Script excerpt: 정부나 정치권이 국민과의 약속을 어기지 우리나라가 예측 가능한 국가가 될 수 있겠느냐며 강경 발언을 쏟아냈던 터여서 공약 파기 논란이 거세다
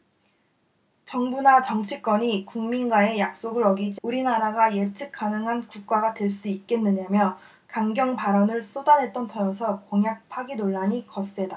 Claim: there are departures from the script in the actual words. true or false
false